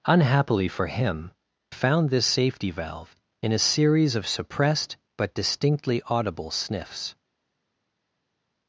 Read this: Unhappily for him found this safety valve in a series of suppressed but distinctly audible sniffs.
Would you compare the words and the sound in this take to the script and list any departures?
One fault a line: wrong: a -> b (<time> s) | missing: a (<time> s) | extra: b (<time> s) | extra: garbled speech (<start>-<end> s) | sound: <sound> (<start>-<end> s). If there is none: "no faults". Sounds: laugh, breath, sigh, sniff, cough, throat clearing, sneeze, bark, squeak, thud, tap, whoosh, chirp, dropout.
no faults